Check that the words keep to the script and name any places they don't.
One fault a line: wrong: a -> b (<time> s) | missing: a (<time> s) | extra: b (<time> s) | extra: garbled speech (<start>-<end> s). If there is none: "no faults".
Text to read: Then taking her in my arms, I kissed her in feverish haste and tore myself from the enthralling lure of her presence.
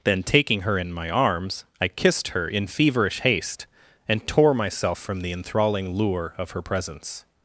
no faults